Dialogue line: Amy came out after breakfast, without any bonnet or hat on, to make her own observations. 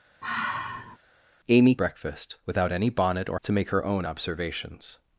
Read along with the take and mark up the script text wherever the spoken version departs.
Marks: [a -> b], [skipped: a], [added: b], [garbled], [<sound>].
[sigh] Amy [skipped: came out after] breakfast, without any bonnet or [skipped: hat on,] to make her own observations.